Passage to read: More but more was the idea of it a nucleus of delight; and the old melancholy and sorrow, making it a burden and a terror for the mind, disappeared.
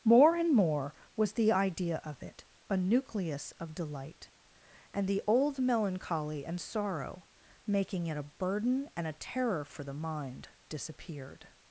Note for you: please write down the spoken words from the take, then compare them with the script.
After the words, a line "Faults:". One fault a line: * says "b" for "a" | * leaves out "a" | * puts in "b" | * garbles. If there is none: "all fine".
More and more was the idea of it a nucleus of delight; and the old melancholy and sorrow, making it a burden and a terror for the mind, disappeared.
Faults:
* says "and" for "but"